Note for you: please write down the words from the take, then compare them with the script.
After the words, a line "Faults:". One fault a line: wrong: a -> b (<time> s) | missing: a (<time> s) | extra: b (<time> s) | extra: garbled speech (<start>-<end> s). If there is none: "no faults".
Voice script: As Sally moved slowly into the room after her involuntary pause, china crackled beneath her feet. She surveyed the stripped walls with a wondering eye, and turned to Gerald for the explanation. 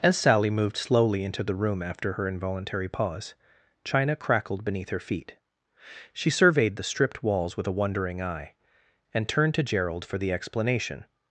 As Sally moved slowly into the room after her involuntary pause, china crackled beneath her feet. She surveyed the stripped walls with a wondering eye, and turned to Gerald for the explanation.
Faults:
no faults